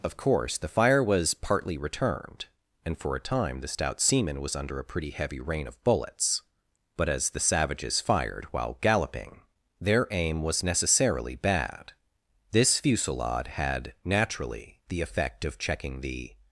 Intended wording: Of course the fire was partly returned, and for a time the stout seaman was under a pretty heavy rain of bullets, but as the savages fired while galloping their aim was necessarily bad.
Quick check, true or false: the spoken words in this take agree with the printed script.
false